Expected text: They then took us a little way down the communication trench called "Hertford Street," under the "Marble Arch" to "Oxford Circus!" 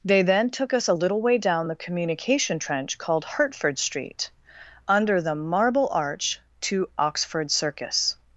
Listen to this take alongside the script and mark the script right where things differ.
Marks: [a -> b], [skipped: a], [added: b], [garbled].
They then took us a little way down the communication trench called "Hertford Street," under the "Marble Arch" to "Oxford Circus!"